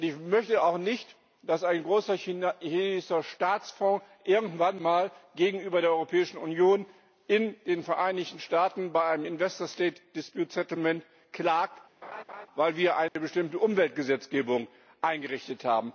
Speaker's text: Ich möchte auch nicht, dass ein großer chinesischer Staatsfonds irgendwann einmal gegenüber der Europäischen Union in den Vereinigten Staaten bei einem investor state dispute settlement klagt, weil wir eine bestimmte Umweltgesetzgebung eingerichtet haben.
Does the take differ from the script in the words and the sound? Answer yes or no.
yes